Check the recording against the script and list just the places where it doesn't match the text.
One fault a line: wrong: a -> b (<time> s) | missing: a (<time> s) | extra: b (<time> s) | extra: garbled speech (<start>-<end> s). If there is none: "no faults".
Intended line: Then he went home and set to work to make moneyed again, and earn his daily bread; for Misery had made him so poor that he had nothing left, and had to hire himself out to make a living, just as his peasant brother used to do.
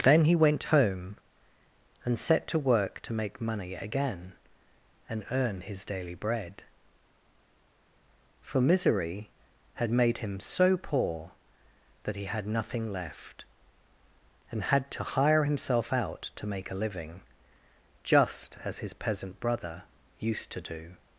wrong: moneyed -> money (3.4 s)